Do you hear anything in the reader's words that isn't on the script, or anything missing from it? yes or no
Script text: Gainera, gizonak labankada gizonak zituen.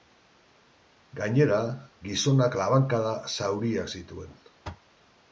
yes